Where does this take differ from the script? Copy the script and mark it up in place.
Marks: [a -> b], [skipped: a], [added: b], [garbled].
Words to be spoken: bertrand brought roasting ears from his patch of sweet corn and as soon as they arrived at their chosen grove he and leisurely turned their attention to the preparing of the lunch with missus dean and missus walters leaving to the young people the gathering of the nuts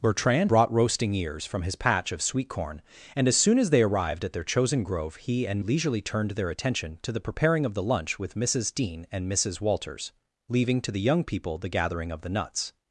bertrand brought roasting ears from his patch of sweet corn and as soon as they arrived at their chosen grove he and leisurely turned their attention to the preparing of the lunch with missus dean and missus walters leaving to the young people the gathering of the nuts